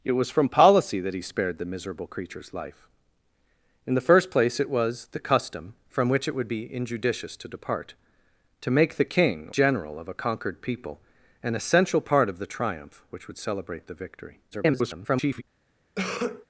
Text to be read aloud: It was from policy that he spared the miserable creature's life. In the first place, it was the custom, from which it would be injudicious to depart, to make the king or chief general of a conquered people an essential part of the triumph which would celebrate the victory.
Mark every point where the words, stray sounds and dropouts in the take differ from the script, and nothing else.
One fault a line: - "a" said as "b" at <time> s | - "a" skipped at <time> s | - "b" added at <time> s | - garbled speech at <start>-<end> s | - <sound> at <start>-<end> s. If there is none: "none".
- "or chief" skipped at 9.5 s
- garbled speech at 14.5-15.4 s
- cough at 16.0-16.5 s